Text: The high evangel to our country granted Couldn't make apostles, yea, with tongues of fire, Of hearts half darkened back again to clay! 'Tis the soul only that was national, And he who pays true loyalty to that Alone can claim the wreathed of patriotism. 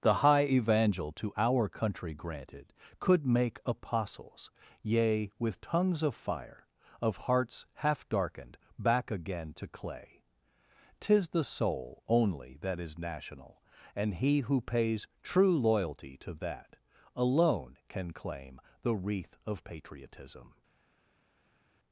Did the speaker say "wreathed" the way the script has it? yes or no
no